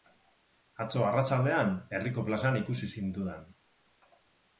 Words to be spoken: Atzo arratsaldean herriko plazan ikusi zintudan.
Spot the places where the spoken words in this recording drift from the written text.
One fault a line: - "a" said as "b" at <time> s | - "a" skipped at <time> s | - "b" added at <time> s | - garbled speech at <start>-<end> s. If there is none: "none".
none